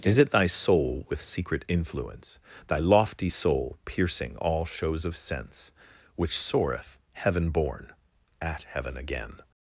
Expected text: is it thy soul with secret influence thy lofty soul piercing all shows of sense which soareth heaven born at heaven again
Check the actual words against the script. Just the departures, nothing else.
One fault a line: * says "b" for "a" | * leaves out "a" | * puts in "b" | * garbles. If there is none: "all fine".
all fine